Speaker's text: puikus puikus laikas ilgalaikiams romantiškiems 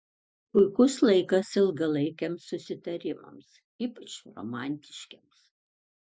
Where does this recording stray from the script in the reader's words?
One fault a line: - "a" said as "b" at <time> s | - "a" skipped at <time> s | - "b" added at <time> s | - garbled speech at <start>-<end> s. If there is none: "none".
- "puikus" skipped at 0.9 s
- "susitarimams ypač" added at 2.5 s